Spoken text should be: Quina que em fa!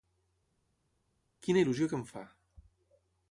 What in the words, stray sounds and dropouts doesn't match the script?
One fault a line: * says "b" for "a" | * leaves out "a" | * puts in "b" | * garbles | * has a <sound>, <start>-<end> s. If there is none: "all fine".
* puts in "il·lusió"